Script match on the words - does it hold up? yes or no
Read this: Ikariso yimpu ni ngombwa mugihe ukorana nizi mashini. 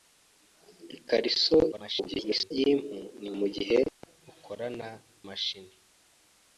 no